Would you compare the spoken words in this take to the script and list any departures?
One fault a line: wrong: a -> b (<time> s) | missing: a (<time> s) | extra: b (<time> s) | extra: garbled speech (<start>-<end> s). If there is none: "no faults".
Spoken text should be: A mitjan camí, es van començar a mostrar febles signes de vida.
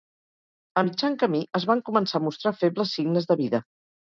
no faults